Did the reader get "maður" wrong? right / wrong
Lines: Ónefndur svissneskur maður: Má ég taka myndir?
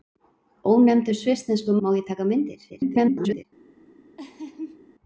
wrong